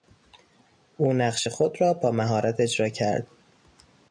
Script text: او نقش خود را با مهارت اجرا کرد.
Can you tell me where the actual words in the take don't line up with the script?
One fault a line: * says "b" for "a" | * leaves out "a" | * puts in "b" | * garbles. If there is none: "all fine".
all fine